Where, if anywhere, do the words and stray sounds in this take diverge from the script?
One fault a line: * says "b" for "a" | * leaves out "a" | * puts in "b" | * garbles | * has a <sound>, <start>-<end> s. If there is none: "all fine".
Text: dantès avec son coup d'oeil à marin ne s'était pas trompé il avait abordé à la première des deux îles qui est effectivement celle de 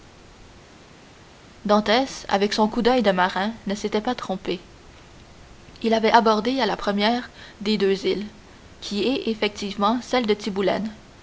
* says "de" for "à"